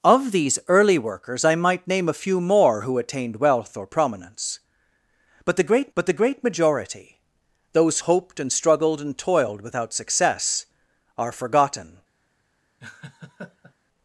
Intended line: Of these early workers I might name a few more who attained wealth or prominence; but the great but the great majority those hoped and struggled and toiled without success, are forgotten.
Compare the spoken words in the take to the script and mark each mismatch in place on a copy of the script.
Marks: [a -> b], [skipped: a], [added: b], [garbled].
Of these early workers I might name a few more who attained wealth or prominence; but the great but the great majority those hoped and struggled and toiled without success, are forgotten.